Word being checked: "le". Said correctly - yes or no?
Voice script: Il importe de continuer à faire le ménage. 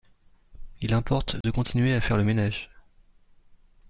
yes